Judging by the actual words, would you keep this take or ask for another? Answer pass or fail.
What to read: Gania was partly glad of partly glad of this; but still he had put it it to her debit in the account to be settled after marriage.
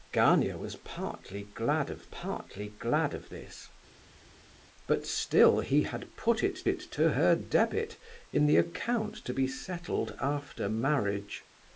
pass